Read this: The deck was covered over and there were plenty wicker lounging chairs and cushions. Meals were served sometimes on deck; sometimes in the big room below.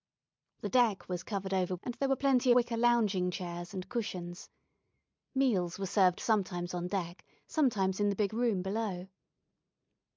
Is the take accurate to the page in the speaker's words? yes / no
yes